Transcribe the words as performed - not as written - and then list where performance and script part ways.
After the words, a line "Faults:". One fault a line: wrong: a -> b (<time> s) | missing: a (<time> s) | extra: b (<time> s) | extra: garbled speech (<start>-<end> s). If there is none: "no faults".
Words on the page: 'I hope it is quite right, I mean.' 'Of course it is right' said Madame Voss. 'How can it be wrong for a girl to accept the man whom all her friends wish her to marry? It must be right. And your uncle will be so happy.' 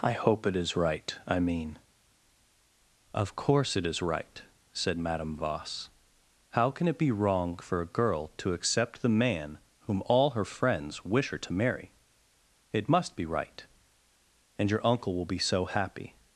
'I hope it is right, I mean.' 'Of course it is right' said Madame Voss. 'How can it be wrong for a girl to accept the man whom all her friends wish her to marry? It must be right. And your uncle will be so happy.'
Faults:
missing: quite (0.8 s)